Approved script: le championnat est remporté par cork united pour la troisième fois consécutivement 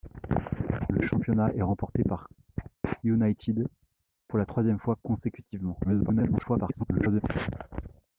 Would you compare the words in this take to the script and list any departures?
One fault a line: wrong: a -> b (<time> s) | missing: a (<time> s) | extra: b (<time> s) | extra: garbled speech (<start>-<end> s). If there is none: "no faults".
missing: cork (2.3 s)
extra: garbled speech (5.8-7.2 s)